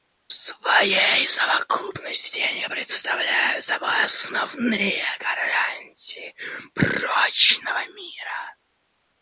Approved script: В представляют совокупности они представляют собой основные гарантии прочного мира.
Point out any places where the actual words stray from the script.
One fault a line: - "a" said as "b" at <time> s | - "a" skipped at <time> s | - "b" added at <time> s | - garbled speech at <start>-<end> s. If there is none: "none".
- "представляют" said as "своей" at 0.3 s